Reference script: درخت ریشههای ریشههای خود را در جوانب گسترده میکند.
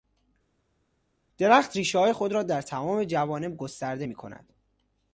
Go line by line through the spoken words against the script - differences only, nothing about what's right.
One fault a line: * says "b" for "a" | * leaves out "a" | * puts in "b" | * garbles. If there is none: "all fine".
* leaves out "ریشههای"
* puts in "تمام"